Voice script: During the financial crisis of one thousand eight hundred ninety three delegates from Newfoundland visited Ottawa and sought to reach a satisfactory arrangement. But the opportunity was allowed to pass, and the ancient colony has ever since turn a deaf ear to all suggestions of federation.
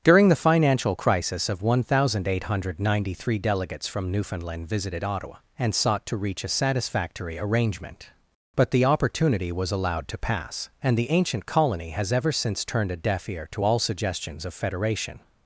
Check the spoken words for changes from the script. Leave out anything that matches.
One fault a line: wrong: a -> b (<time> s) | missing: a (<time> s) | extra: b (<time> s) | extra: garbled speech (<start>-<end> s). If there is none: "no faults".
wrong: turn -> turned (12.6 s)